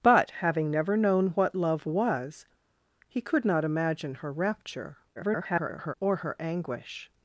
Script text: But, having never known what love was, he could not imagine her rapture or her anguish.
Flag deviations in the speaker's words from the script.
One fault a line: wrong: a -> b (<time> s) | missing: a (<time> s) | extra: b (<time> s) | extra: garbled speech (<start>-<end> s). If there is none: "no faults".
extra: garbled speech (5.2-5.9 s)